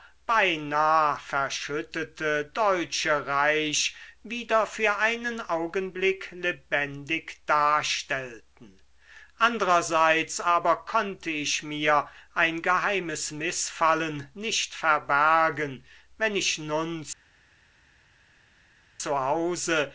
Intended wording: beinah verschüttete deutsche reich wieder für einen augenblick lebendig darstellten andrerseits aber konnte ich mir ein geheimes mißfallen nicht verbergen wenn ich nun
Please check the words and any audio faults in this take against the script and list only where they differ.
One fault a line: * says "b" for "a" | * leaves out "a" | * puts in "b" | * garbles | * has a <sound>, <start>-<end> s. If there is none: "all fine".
all fine